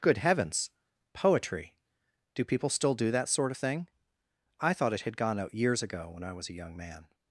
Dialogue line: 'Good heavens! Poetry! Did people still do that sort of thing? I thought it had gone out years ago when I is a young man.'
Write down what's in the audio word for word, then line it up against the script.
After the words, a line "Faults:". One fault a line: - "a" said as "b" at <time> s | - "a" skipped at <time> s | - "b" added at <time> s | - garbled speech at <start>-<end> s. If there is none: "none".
'Good heavens! Poetry! Do people still do that sort of thing? I thought it had gone out years ago when I was a young man.'
Faults:
- "Did" said as "Do" at 2.3 s
- "is" said as "was" at 6.3 s